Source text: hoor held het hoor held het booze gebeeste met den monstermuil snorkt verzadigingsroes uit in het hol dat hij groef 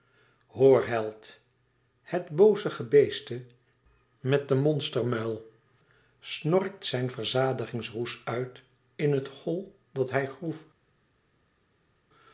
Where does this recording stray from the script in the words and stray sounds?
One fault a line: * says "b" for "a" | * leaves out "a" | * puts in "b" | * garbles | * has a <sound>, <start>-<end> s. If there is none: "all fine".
* leaves out "hoor held het"
* puts in "zijn"